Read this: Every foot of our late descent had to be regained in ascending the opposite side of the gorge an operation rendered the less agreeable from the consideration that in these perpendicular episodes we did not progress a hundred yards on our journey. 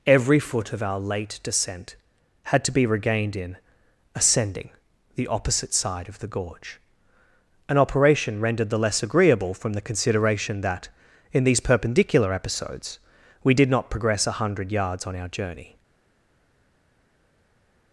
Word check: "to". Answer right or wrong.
right